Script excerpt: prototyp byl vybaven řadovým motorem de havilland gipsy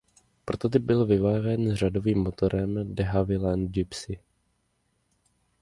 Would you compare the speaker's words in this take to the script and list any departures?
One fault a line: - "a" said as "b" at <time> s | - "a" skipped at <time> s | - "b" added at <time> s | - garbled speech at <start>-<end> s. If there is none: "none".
none